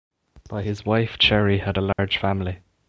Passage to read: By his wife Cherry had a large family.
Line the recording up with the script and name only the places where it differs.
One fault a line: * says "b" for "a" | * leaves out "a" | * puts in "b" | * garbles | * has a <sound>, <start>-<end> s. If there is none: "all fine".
* has a dropout, 1.9-2.0 s